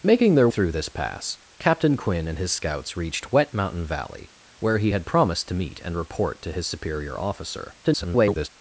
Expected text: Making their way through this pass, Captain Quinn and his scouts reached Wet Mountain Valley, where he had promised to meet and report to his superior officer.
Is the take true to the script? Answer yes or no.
no